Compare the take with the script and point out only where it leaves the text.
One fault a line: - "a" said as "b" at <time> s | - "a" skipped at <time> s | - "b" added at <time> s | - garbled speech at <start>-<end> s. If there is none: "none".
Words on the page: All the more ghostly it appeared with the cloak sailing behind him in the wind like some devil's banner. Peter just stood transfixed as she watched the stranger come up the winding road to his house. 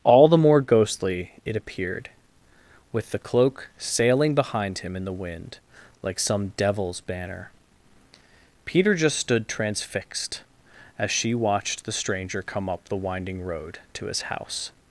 none